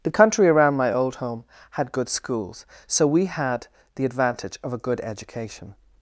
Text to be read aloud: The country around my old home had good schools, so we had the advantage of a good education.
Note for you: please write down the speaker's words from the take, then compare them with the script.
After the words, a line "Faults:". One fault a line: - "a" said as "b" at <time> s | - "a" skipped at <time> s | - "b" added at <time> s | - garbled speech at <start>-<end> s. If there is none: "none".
The country around my old home had good schools, so we had the advantage of a good education.
Faults:
none